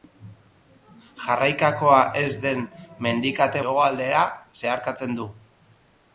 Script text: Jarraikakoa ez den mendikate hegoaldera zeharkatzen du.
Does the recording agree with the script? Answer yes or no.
yes